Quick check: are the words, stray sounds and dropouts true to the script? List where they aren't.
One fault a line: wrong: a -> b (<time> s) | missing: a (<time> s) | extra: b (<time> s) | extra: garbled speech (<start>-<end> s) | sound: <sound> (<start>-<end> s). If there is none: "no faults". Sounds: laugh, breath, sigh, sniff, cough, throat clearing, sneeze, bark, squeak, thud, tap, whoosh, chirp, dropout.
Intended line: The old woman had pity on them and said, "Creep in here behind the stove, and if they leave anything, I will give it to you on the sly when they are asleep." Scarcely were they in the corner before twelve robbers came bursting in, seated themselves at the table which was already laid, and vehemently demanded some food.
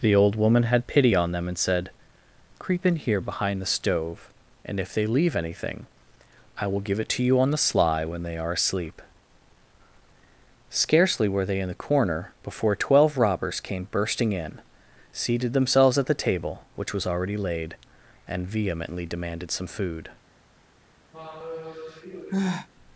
sound: sigh (21.1-22.7 s)